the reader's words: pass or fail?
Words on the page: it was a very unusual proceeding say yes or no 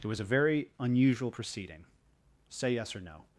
pass